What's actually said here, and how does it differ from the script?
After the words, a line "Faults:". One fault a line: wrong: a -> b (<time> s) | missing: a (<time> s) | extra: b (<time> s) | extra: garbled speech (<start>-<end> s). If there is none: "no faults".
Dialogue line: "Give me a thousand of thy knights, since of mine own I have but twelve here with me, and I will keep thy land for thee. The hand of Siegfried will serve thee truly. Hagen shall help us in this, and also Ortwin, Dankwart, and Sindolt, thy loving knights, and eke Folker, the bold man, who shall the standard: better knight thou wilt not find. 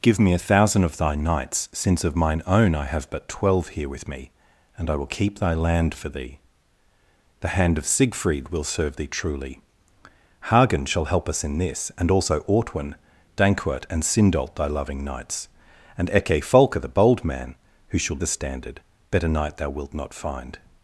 "Give me a thousand of thy knights, since of mine own I have but twelve here with me, and I will keep thy land for thee. The hand of Siegfried will serve thee truly. Hagen shall help us in this, and also Ortwin, Dankwart, and Sindolt, thy loving knights, and eke Folker, the bold man, who shall the standard: better knight thou wilt not find.
Faults:
no faults